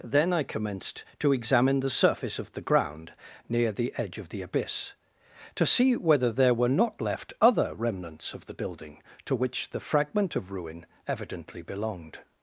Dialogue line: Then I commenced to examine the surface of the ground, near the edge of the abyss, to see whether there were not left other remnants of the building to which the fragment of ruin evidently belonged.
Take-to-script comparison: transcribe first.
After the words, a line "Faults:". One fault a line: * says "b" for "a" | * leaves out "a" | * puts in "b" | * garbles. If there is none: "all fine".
Then I commenced to examine the surface of the ground, near the edge of the abyss, to see whether there were not left other remnants of the building to which the fragment of ruin evidently belonged.
Faults:
all fine